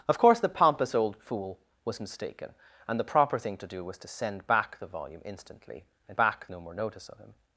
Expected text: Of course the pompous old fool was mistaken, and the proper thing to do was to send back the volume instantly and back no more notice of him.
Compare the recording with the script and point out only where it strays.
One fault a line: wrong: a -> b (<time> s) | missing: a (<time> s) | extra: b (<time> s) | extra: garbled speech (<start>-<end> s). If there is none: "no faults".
no faults